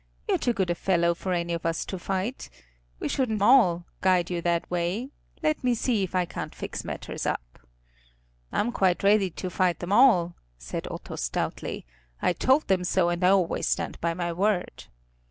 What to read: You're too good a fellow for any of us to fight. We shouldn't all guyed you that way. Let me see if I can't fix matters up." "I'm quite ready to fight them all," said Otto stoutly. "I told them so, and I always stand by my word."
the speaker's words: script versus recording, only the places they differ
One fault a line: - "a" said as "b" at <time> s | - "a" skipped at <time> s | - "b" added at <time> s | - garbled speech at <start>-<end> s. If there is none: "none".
none